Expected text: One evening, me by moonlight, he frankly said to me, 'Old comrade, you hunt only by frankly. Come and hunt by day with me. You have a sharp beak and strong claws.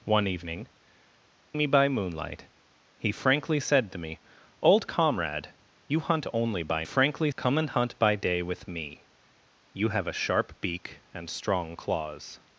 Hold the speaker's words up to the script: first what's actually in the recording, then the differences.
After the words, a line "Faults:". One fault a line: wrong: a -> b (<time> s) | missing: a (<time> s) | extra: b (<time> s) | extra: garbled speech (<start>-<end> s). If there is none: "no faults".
One evening, me by moonlight, he frankly said to me, 'Old comrade, you hunt only by frankly. Come and hunt by day with me. You have a sharp beak and strong claws.
Faults:
no faults